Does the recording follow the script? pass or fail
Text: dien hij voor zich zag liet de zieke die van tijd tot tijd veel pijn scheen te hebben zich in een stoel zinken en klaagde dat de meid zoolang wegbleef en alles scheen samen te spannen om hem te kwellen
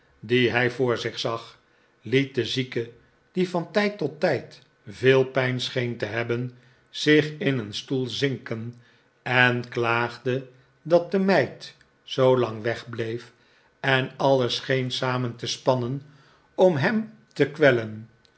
pass